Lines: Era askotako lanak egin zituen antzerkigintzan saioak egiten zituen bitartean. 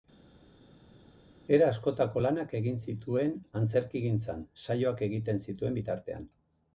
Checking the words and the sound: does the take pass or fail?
pass